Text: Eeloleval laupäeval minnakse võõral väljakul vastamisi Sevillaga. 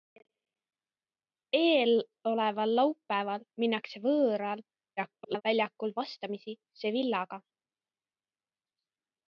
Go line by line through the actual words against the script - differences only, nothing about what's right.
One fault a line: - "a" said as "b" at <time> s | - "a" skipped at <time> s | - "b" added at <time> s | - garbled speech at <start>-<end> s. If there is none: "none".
- garbled speech at 5.0-5.4 s